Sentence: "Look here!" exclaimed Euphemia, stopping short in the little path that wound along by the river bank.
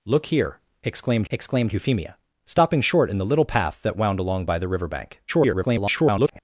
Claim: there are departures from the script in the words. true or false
true